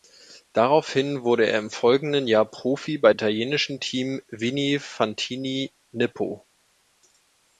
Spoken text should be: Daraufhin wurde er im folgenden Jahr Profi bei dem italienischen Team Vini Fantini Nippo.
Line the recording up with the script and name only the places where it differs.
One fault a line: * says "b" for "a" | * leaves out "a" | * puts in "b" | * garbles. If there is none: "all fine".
* leaves out "dem"